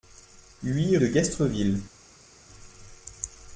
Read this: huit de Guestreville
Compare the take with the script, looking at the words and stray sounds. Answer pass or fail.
pass